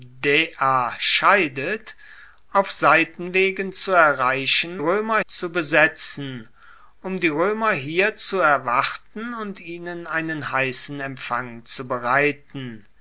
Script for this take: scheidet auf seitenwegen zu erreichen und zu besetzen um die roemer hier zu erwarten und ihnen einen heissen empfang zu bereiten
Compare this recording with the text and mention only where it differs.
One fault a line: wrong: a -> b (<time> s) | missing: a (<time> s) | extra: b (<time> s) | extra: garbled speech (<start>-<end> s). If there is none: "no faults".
wrong: und -> roemer (4.8 s)